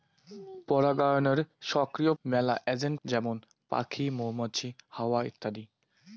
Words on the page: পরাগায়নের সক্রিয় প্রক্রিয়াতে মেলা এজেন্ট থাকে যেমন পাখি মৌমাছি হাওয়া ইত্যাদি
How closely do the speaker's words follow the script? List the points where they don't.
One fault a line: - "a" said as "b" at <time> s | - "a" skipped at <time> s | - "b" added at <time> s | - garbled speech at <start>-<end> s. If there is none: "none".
- "প্রক্রিয়াতে" skipped at 2.1 s
- "থাকে" skipped at 3.0 s